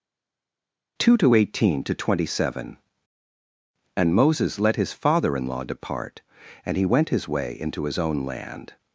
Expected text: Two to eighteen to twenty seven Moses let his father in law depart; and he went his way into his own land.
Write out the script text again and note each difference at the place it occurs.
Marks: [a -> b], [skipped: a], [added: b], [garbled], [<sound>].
Two to eighteen to twenty seven [added: And] Moses let his father in law depart; and he went his way into his own land.